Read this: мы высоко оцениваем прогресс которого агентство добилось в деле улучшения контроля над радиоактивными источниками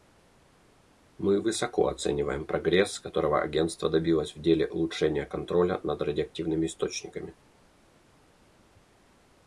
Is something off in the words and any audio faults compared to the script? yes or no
no